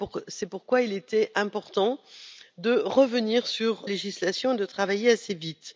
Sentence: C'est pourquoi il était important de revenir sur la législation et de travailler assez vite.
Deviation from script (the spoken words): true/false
true